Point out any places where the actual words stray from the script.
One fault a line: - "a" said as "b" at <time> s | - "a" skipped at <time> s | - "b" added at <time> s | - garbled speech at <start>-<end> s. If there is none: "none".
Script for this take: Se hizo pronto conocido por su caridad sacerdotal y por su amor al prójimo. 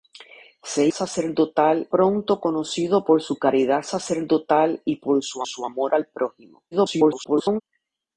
- "hizo" said as "sacerdotal" at 0.9 s
- "su" added at 5.5 s
- garbled speech at 6.7-7.6 s